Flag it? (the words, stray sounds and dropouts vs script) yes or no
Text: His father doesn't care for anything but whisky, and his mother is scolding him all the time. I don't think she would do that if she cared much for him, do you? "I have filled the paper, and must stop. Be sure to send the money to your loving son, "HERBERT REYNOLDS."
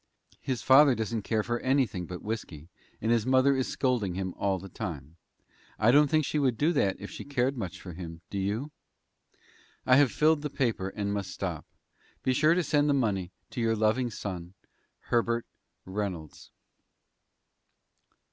no